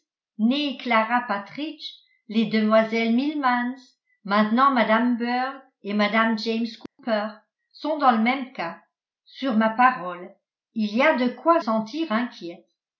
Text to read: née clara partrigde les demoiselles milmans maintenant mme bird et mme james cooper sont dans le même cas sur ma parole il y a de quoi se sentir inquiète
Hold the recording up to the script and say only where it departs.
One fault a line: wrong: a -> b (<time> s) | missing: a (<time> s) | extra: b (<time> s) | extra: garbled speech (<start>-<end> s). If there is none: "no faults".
missing: se (11.6 s)